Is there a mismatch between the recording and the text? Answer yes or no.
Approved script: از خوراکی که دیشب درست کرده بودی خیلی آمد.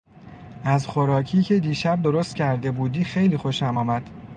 yes